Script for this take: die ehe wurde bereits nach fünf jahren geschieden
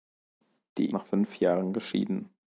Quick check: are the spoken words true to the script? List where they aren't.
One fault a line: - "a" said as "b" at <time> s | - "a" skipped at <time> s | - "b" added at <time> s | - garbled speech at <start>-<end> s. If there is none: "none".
- "ehe wurde bereits" skipped at 0.9 s